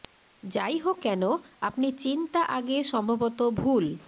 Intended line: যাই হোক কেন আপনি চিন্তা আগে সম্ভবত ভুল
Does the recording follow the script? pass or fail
pass